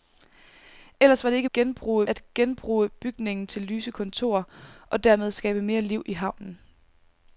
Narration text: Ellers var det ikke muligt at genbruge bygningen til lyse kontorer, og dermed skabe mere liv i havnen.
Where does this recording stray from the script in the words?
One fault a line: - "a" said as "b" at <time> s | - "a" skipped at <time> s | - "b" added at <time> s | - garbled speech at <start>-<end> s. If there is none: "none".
- "muligt" said as "genbruge" at 1.5 s